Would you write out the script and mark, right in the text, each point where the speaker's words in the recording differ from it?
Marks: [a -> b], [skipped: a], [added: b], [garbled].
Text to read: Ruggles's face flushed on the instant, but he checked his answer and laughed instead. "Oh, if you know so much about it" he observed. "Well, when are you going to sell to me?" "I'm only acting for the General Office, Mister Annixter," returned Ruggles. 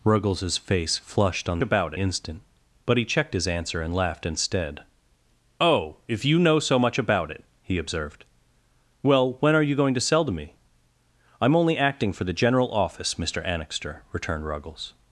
Ruggles's face flushed on [the -> about] instant, but he checked his answer and laughed instead. "Oh, if you know so much about it" he observed. "Well, when are you going to sell to me?" "I'm only acting for the General Office, Mister Annixter," returned Ruggles.